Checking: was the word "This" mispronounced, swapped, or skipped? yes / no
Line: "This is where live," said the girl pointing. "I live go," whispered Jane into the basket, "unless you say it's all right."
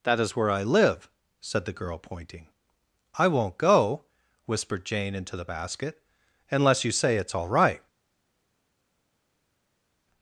yes